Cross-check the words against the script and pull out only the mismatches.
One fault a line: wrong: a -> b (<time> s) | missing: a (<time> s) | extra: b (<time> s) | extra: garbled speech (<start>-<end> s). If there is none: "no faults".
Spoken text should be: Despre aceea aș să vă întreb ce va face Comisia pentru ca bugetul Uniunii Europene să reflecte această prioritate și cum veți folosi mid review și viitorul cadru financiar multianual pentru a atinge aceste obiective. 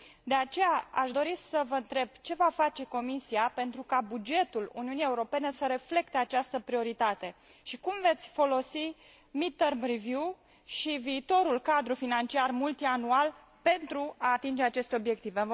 wrong: Despre -> De (0.2 s)
extra: dori (1.1 s)
extra: term (9.5 s)